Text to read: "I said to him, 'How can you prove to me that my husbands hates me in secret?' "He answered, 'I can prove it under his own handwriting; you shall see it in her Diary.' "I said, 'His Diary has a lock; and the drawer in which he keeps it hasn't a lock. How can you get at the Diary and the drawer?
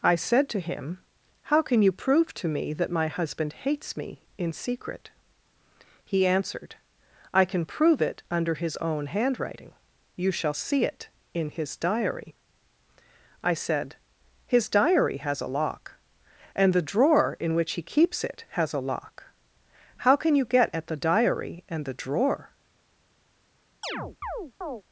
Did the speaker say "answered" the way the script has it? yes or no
yes